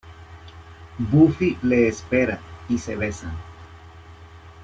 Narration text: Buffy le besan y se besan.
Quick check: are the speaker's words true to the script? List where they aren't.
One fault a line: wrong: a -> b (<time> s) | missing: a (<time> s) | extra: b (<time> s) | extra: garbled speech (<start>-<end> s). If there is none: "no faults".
wrong: besan -> espera (1.9 s)